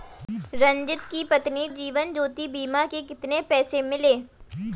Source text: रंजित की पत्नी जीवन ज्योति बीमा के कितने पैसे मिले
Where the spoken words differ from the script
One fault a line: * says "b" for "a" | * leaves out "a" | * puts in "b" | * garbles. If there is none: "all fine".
all fine